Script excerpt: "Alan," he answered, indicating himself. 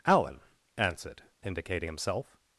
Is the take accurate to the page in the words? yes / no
no